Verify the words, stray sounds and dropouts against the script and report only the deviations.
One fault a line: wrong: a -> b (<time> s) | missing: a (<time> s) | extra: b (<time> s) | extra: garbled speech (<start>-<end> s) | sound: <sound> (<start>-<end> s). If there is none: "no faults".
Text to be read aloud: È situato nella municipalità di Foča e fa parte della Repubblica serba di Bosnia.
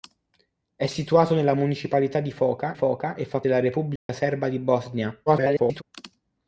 extra: Foča (2.7 s)
missing: parte (3.4 s)
sound: dropout (4.0-4.1 s)
extra: garbled speech (5.3-5.8 s)